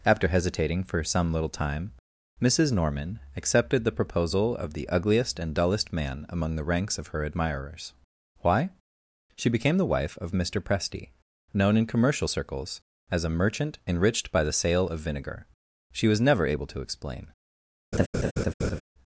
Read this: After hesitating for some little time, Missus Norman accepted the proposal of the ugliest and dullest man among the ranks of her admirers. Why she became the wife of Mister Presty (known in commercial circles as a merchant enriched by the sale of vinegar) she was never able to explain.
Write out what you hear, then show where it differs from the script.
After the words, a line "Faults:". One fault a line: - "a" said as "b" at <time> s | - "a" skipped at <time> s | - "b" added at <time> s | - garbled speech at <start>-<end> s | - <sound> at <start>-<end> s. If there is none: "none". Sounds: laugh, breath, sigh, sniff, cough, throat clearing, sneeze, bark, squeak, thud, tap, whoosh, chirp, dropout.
After hesitating for some little time, Missus Norman accepted the proposal of the ugliest and dullest man among the ranks of her admirers. Why she became the wife of Mister Presty (known in commercial circles as a merchant enriched by the sale of vinegar) she was never able to explain.
Faults:
- laugh at 17.9-18.8 s